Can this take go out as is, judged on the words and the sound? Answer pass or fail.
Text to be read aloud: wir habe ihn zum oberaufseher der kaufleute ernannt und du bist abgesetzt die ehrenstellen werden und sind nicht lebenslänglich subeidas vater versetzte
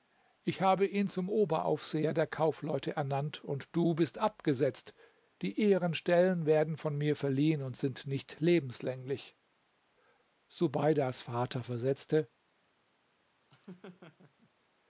fail